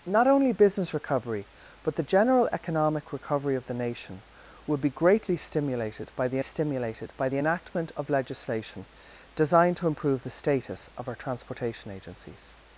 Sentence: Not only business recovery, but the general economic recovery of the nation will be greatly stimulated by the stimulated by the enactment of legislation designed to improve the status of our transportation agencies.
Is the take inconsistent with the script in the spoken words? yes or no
no